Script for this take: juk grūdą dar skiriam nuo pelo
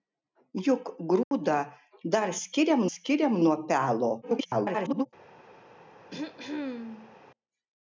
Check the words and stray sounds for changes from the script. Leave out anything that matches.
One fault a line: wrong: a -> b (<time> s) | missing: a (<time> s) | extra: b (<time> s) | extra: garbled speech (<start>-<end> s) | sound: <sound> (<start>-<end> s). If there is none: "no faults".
sound: dropout (1.2-1.3 s)
extra: skiriam (2.9 s)
extra: garbled speech (4.2-5.1 s)
sound: throat clearing (6.1-7.2 s)